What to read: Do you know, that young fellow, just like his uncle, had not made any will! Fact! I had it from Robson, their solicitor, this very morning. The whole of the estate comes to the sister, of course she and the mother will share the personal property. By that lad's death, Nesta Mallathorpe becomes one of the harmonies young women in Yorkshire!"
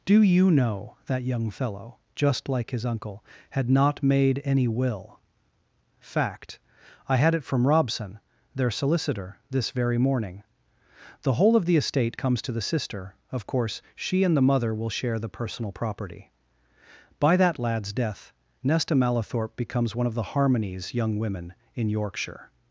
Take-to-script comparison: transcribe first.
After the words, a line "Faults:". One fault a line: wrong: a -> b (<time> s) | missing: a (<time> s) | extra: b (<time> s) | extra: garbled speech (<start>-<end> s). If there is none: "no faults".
Do you know, that young fellow, just like his uncle, had not made any will! Fact! I had it from Robson, their solicitor, this very morning. The whole of the estate comes to the sister, of course she and the mother will share the personal property. By that lad's death, Nesta Mallathorpe becomes one of the harmonies young women in Yorkshire!"
Faults:
no faults